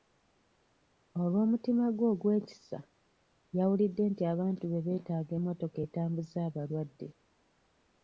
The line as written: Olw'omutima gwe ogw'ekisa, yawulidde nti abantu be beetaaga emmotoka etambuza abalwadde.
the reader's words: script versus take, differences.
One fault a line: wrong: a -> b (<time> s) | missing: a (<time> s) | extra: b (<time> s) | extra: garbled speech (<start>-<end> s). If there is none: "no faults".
no faults